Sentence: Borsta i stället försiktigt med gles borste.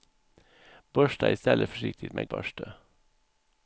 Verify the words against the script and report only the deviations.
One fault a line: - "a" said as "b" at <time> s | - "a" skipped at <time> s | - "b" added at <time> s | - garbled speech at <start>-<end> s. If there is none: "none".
- "gles" skipped at 2.3 s